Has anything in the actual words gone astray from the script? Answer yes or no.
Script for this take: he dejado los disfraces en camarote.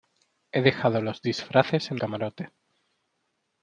no